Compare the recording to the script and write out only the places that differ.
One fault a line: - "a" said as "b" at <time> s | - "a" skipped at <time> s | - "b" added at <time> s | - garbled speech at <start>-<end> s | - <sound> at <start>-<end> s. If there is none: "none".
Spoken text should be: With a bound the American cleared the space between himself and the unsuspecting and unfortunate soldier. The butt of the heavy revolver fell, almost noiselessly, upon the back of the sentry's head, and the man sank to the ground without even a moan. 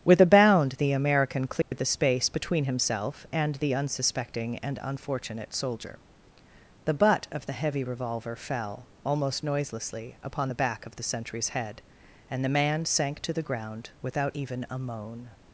- dropout at 1.6-1.7 s